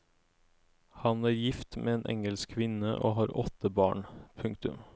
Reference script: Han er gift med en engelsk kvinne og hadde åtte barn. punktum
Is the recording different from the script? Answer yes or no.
yes